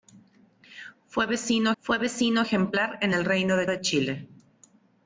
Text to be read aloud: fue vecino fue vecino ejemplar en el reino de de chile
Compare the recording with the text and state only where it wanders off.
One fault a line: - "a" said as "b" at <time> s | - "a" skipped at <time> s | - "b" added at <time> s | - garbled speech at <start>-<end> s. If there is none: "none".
none